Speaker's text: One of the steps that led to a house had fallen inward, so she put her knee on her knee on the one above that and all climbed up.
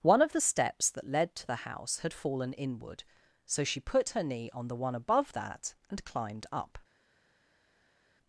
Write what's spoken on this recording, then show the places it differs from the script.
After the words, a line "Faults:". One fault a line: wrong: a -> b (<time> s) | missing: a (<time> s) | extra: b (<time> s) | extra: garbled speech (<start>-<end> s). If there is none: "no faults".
One of the steps that led to the house had fallen inward, so she put her knee on the one above that and climbed up.
Faults:
wrong: a -> the (1.5 s)
missing: her knee on (4.7 s)
missing: all (6.0 s)